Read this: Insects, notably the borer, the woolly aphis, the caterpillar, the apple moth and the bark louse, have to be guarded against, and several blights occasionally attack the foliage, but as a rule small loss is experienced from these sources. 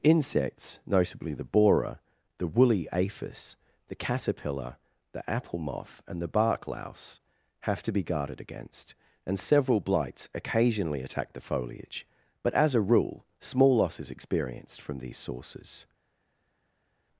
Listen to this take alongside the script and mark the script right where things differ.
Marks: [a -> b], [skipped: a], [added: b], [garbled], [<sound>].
Insects, notably the borer, the woolly aphis, the caterpillar, the apple moth and the bark louse, have to be guarded against, and several blights occasionally attack the foliage, but as a rule small loss is experienced from these sources.